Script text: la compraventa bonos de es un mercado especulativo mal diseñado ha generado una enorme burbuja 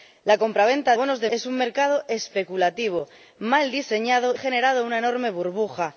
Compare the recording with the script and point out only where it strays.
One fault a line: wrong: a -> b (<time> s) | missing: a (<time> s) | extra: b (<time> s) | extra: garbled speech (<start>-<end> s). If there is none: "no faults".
no faults